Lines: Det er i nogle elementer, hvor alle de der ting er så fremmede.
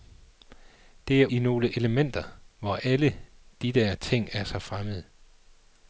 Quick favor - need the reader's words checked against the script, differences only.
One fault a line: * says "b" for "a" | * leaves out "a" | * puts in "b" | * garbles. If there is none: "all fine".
all fine